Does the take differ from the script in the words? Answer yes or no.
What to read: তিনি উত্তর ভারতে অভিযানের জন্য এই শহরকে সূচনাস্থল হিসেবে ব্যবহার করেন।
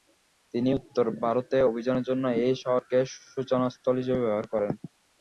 no